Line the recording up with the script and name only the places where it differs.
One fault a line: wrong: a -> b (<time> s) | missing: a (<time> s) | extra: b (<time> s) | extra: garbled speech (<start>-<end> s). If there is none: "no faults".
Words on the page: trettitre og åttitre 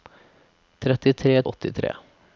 no faults